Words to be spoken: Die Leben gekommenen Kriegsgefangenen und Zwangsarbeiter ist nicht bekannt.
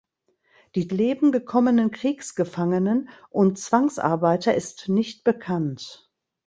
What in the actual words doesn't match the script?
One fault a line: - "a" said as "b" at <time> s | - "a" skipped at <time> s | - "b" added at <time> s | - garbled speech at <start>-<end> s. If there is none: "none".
none